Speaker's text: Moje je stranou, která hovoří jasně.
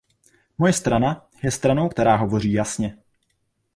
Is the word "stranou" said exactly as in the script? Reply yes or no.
yes